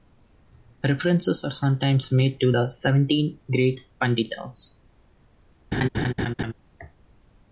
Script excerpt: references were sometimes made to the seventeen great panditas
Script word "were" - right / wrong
wrong